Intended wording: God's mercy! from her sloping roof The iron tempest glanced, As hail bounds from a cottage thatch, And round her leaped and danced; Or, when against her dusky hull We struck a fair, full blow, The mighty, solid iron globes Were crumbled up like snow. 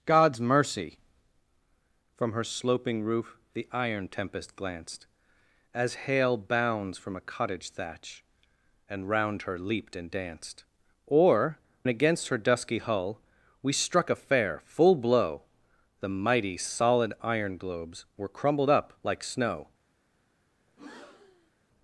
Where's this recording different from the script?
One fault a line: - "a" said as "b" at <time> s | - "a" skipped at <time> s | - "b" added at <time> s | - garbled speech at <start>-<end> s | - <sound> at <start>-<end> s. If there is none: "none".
- "when" skipped at 11.6 s
- breath at 20.7-21.5 s